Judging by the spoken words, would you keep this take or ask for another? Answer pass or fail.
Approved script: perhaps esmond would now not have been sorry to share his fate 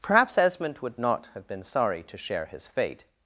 fail